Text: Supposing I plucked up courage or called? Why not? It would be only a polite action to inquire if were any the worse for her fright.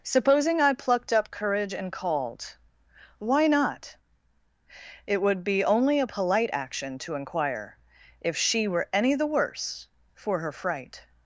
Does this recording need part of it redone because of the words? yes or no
yes